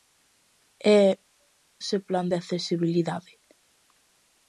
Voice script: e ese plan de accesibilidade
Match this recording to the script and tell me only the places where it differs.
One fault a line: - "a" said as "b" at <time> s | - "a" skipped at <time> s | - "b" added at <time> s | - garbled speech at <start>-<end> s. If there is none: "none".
none